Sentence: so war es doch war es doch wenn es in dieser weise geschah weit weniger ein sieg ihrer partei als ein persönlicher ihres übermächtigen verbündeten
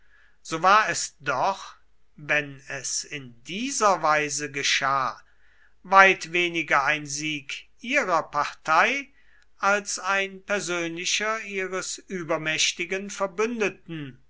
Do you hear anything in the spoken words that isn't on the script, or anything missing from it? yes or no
yes